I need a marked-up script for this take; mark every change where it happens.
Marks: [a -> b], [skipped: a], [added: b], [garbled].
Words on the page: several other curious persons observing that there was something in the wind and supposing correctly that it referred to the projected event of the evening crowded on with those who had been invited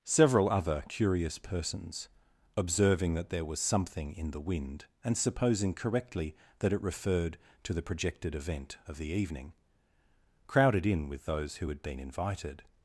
several other curious persons observing that there was something in the wind and supposing correctly that it referred to the projected event of the evening crowded [on -> in] with those who had been invited